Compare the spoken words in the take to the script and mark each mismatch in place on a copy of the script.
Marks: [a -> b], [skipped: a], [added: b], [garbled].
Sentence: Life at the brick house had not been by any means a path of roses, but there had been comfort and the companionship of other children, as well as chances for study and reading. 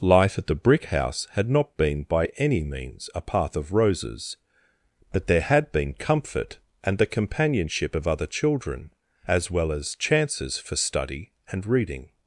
Life at the brick house had not been by any means a path of roses, but there had been comfort and the companionship of other children, as well as chances for study and reading.